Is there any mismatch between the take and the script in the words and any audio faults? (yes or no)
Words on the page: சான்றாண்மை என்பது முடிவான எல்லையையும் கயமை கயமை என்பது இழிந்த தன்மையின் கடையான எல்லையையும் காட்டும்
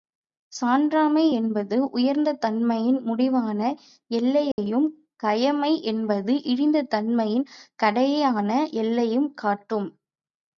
yes